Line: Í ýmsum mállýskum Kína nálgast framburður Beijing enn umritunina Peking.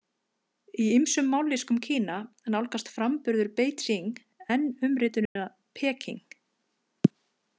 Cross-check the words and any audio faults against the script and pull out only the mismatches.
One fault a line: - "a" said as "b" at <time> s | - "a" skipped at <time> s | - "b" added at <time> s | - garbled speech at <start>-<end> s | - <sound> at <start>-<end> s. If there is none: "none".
- dropout at 5.3-5.4 s